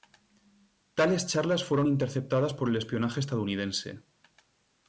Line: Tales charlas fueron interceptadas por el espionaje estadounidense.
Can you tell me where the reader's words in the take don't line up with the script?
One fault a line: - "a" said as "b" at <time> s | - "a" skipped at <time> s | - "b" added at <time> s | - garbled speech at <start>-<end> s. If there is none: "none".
none